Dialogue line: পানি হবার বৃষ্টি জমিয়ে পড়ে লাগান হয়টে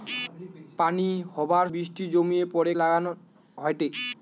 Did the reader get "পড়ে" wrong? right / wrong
right